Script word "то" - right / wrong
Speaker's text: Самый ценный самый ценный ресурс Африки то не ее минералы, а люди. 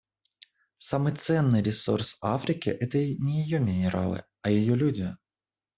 wrong